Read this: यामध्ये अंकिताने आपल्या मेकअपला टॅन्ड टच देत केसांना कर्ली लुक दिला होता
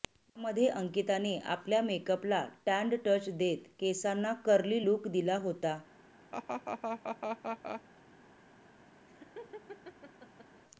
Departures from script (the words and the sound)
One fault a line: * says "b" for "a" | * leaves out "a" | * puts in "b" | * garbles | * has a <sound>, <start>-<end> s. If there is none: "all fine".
* has a laugh, 6.3-7.8 s
* has a laugh, 9.1-10.6 s